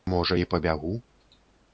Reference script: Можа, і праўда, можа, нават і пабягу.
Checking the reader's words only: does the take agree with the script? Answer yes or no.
no